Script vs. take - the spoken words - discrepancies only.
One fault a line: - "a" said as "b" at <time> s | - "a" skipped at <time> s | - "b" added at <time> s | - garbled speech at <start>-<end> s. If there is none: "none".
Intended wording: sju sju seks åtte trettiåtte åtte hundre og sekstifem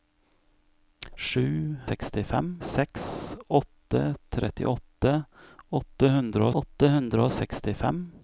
- "sju" said as "sekstifem" at 1.9 s
- "åtte hundre" added at 6.6 s